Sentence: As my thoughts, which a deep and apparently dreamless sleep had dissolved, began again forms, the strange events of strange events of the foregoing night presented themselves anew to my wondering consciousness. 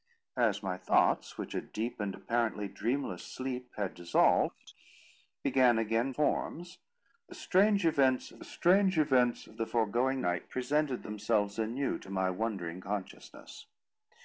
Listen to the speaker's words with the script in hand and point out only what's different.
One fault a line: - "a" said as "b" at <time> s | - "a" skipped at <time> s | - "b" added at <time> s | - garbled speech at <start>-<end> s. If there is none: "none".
none